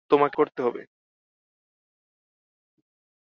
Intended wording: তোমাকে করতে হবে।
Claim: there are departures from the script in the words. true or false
false